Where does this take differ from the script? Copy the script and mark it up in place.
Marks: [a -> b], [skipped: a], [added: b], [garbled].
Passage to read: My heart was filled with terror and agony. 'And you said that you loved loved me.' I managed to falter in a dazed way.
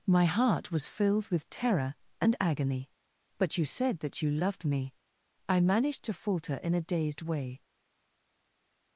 My heart was filled with terror and agony. ['And -> But] you said that you loved [skipped: loved] me.' I managed to falter in a dazed way.